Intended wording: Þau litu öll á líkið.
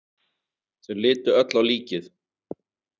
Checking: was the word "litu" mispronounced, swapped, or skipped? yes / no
no